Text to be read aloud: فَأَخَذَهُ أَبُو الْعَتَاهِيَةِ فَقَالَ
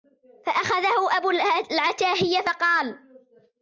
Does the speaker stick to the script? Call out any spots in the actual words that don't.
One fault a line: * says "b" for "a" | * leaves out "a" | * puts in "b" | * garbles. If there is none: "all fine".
all fine